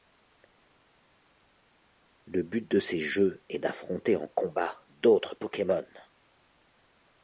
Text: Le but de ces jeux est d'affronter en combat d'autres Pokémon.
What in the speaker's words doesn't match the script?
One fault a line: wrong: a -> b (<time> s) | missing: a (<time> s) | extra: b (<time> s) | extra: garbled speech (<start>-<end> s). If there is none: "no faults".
no faults